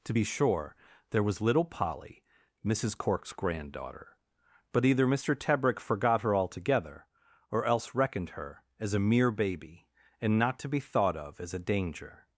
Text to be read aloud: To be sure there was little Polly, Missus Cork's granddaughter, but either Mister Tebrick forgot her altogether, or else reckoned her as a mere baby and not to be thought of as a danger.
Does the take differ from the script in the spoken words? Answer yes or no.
no